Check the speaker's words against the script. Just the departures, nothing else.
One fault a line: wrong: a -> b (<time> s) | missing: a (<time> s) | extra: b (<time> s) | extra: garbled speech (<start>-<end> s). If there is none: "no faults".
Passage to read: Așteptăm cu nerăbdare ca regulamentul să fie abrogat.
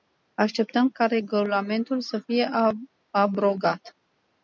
missing: cu nerăbdare (0.9 s)